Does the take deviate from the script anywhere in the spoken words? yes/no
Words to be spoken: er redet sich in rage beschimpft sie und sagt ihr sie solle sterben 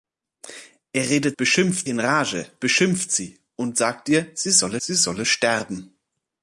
yes